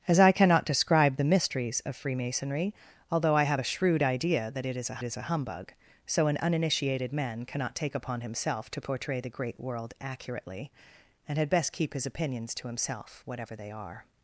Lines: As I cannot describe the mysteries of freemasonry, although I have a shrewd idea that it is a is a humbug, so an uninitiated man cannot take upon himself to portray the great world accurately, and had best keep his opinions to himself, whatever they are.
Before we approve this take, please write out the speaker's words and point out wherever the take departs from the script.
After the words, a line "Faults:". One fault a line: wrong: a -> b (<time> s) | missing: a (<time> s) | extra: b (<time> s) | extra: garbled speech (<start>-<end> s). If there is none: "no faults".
As I cannot describe the mysteries of freemasonry, although I have a shrewd idea that it is a is a humbug, so an uninitiated man cannot take upon himself to portray the great world accurately, and had best keep his opinions to himself, whatever they are.
Faults:
no faults